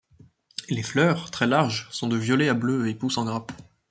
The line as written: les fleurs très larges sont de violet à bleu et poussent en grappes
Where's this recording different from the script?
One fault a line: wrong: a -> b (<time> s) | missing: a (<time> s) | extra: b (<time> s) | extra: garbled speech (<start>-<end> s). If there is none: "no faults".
no faults